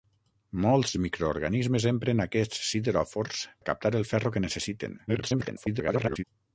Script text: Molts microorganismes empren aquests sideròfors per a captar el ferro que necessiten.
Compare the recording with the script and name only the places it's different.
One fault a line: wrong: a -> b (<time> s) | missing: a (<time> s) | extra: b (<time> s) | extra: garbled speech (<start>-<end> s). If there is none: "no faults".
missing: per (3.5 s)
extra: garbled speech (5.1-6.2 s)